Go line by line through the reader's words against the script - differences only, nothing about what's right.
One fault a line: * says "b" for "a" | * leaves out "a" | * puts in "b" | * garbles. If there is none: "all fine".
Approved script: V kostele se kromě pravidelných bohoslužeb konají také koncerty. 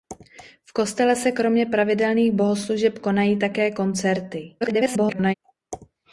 * garbles